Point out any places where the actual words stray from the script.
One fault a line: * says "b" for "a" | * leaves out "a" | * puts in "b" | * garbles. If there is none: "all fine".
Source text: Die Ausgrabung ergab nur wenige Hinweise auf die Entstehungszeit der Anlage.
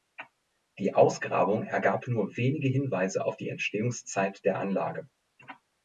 all fine